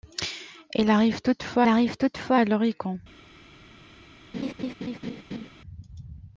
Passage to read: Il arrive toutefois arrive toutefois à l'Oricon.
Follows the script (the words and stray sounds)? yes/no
no